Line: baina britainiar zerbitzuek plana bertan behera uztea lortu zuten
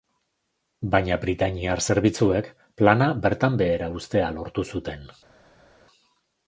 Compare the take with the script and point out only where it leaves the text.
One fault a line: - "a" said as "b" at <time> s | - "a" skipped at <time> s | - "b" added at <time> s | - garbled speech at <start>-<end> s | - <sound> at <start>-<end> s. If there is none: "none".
none